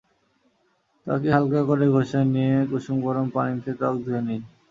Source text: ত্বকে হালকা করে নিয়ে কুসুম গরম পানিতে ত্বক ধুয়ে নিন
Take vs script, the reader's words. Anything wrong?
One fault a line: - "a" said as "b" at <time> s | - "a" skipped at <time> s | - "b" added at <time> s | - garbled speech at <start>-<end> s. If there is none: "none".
- "ঘষে" added at 1.9 s